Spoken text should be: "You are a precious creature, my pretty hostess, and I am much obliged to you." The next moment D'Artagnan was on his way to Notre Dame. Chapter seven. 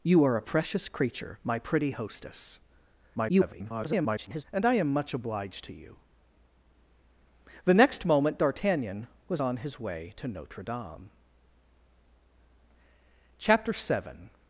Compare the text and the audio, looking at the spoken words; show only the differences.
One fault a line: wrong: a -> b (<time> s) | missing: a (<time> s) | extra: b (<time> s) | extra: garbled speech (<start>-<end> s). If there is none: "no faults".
extra: garbled speech (3.1-4.4 s)